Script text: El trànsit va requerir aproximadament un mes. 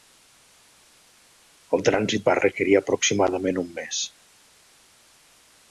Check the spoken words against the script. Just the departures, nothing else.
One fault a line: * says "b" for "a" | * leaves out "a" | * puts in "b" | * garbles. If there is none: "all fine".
all fine